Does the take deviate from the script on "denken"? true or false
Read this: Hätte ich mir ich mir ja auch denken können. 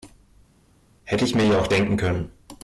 false